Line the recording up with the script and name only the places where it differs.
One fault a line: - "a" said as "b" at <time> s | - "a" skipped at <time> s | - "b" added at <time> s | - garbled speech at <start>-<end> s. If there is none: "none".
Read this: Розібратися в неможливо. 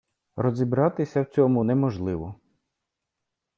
- "цьому" added at 1.2 s